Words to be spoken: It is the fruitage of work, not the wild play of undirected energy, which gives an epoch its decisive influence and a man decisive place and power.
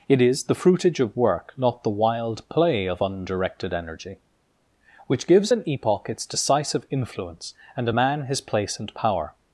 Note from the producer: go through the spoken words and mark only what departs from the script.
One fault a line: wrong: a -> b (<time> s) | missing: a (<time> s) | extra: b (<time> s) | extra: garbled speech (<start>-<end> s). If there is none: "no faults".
wrong: decisive -> his (8.2 s)